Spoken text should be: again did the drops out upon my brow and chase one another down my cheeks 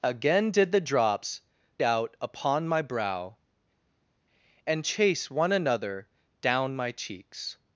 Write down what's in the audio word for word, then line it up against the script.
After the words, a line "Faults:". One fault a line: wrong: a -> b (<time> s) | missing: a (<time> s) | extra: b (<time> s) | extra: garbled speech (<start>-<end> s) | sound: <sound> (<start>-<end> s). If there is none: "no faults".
again did the drops out upon my brow and chase one another down my cheeks
Faults:
no faults